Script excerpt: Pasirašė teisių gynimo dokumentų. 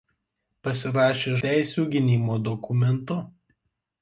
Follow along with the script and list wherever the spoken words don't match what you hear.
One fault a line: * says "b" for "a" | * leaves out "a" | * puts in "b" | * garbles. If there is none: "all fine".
all fine